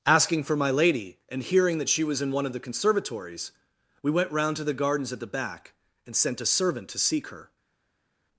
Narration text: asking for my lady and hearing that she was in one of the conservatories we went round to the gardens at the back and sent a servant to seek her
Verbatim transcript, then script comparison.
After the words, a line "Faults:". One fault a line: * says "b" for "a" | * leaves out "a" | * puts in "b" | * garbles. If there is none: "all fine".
asking for my lady and hearing that she was in one of the conservatories we went round to the gardens at the back and sent a servant to seek her
Faults:
all fine